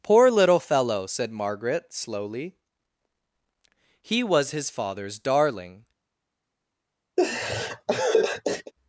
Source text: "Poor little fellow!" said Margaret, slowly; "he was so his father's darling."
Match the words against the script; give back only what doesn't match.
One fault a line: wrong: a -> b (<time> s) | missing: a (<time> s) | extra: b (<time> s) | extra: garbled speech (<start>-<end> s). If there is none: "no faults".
missing: so (4.5 s)